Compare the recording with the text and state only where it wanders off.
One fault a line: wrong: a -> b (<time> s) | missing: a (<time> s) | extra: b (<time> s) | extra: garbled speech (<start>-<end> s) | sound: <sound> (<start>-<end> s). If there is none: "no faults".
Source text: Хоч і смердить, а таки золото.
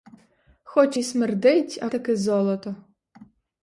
no faults